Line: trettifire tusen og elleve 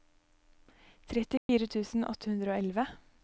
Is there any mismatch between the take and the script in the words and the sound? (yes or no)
yes